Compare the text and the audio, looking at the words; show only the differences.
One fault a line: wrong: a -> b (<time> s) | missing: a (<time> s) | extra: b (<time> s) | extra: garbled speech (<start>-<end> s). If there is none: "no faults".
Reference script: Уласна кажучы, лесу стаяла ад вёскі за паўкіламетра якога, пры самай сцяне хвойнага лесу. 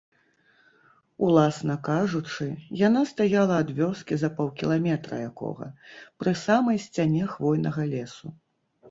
wrong: лесу -> яна (2.9 s)